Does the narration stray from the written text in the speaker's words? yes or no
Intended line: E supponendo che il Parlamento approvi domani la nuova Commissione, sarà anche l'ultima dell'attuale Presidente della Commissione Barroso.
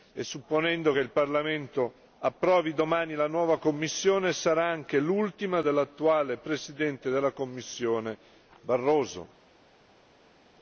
no